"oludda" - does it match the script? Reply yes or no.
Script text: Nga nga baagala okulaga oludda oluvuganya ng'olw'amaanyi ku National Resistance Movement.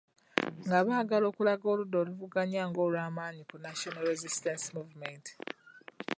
yes